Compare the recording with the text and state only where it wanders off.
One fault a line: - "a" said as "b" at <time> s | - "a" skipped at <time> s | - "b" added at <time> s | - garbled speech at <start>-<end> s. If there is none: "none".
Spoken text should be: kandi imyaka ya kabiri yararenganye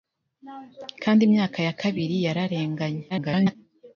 - garbled speech at 3.1-3.6 s